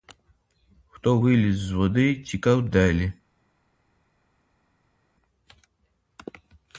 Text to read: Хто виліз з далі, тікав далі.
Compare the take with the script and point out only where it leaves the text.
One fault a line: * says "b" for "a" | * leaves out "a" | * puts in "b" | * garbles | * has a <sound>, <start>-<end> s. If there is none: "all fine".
* says "води" for "далі"